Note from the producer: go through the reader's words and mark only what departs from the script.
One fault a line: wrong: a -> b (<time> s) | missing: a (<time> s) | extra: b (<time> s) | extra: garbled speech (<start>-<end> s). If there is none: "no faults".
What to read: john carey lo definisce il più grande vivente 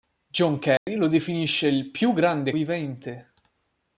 no faults